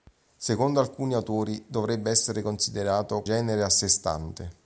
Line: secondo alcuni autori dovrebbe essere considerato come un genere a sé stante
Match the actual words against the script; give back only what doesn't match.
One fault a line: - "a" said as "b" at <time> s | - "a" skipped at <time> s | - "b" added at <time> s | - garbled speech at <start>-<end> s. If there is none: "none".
- "come un" skipped at 3.2 s